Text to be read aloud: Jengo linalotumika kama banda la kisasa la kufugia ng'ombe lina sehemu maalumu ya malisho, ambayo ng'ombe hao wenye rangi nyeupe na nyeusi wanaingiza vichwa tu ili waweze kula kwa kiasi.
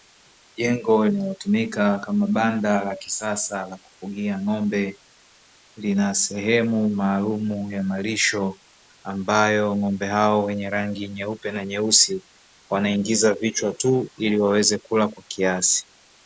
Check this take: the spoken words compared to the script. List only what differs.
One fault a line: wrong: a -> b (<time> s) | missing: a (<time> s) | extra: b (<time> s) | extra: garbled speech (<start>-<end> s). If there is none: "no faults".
no faults